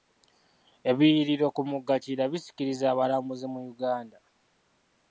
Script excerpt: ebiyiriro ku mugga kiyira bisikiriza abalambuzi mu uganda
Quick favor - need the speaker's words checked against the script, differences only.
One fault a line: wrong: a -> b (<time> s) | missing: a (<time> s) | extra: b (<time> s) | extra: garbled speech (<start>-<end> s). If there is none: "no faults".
no faults